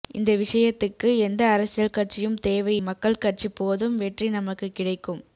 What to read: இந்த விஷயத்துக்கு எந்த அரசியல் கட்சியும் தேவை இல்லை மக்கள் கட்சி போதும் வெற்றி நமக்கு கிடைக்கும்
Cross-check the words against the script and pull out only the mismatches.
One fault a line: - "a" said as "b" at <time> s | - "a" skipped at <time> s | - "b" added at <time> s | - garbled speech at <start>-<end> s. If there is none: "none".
- "இல்லை" skipped at 2.8 s